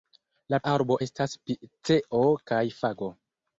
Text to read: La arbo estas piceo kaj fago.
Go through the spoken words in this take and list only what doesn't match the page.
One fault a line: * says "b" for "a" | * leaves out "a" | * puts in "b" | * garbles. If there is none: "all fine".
all fine